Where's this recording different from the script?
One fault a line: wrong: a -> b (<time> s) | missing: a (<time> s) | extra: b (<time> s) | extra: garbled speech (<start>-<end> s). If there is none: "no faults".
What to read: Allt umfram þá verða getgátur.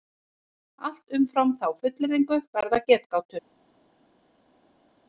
extra: fullyrðingu (1.8 s)